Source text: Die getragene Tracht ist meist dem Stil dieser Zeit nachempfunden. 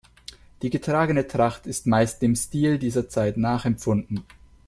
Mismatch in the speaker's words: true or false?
false